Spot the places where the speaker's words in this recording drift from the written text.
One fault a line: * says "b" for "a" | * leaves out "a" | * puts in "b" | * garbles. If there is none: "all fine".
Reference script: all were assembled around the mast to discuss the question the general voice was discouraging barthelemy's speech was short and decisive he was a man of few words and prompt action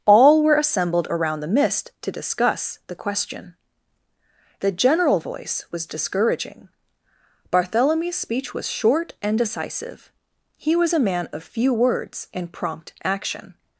* says "mist" for "mast"